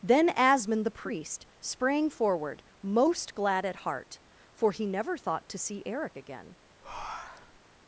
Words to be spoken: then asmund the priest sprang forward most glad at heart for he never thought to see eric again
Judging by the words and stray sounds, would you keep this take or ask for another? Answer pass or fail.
fail